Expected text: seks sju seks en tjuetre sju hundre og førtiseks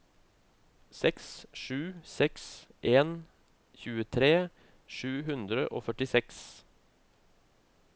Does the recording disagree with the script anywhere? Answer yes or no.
no